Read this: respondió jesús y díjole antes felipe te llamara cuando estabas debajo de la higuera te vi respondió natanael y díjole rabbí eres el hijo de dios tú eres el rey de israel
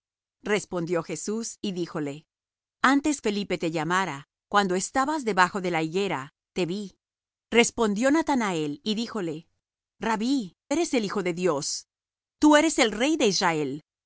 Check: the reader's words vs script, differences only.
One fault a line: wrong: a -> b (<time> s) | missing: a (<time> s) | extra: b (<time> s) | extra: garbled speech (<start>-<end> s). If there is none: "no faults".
no faults